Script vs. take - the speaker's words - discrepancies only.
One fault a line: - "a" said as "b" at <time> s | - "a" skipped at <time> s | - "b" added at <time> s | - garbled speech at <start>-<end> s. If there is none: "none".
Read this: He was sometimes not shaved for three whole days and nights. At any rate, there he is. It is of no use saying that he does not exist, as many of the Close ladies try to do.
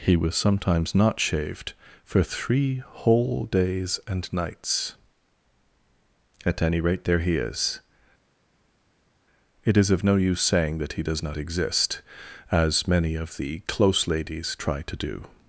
none